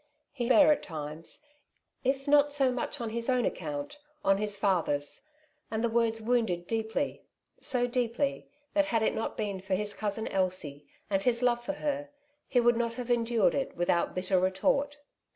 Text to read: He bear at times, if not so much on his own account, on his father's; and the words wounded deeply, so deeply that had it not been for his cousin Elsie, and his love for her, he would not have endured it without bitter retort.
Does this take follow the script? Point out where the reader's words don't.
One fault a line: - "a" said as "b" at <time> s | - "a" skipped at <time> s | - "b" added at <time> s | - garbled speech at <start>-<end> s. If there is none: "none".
none